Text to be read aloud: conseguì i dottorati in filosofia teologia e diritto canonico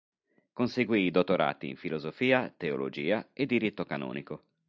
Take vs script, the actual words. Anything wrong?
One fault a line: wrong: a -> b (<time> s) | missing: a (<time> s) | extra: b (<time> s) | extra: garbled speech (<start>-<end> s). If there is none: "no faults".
no faults